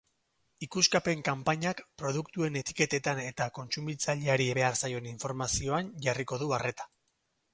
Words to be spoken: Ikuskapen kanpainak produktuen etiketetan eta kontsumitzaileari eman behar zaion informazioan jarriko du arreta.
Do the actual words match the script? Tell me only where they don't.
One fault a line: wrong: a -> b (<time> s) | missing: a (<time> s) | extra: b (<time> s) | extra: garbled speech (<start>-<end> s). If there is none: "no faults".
missing: eman (4.5 s)